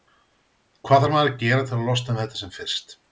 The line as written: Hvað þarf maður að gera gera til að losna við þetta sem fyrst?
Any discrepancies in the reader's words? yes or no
yes